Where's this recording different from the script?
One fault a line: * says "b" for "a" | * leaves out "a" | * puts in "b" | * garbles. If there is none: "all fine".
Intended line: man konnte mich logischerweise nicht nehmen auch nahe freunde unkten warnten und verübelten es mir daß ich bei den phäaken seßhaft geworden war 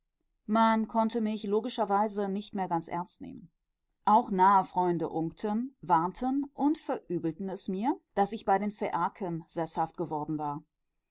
* puts in "mehr ganz ernst"